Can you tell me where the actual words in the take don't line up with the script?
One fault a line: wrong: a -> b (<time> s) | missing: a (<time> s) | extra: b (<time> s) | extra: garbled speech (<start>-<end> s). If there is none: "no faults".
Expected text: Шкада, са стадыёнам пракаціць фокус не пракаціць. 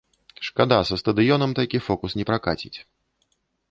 wrong: пракаціць -> такі (1.6 s)